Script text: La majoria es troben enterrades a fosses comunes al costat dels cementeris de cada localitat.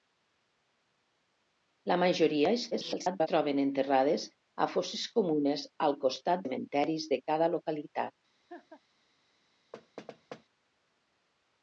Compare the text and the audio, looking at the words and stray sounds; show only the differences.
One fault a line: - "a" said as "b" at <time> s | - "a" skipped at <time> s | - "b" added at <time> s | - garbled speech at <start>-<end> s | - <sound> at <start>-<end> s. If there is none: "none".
- garbled speech at 2.7-3.3 s
- "dels" skipped at 6.5 s
- laugh at 8.5-8.8 s
- thud at 9.7-10.4 s